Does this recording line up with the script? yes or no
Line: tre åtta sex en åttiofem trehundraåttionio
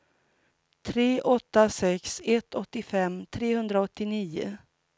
no